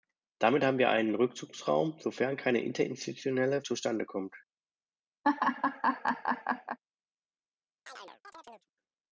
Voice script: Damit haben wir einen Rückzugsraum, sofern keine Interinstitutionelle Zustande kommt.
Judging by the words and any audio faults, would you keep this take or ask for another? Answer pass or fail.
fail